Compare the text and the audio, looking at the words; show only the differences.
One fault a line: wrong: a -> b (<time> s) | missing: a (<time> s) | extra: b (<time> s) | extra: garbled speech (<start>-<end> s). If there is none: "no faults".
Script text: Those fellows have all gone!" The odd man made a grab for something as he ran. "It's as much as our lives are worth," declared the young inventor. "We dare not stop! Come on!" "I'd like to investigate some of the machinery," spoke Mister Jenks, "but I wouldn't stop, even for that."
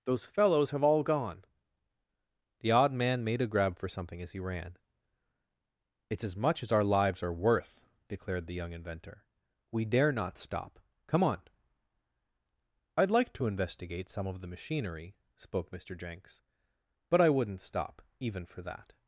no faults